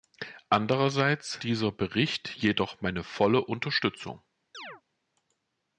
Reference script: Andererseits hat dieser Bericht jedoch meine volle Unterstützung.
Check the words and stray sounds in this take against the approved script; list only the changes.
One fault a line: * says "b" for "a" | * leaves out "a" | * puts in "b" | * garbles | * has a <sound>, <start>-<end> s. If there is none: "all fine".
* leaves out "hat"
* has a chirp, 4.5-4.8 s